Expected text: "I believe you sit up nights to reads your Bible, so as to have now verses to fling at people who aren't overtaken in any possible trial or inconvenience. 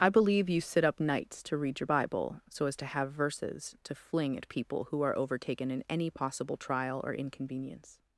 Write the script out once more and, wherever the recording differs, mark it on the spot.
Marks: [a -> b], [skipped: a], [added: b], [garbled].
"I believe you sit up nights to [reads -> read] your Bible, so as to have [skipped: now] verses to fling at people who [aren't -> are] overtaken in any possible trial or inconvenience.